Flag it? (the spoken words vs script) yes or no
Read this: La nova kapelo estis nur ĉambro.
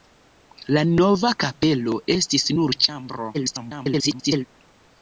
yes